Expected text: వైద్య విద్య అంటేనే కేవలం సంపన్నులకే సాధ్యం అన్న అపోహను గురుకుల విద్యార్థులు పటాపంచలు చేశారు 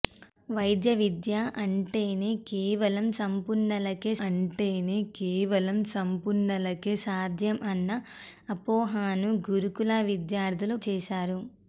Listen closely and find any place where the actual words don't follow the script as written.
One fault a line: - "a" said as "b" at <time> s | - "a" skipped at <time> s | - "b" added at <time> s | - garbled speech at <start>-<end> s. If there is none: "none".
- "అంటేనే కేవలం సంపన్నులకే" added at 4.3 s
- "పటాపంచలు" skipped at 10.8 s